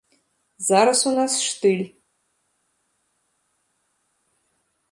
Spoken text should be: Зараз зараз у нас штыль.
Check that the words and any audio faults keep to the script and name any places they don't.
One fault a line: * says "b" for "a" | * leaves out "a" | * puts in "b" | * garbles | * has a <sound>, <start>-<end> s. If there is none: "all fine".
* leaves out "зараз"